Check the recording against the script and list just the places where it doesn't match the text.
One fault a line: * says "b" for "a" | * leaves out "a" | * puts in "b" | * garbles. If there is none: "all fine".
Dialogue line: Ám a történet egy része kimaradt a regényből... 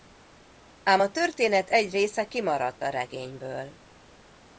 all fine